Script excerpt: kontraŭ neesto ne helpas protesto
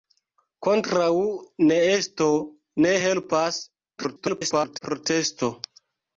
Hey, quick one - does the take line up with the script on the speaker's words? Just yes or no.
no